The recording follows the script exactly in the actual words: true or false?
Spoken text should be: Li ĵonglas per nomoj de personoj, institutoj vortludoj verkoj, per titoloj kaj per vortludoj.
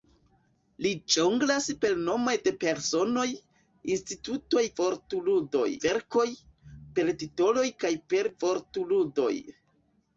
true